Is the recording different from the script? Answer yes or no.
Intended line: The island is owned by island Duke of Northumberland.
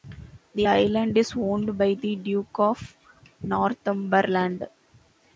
yes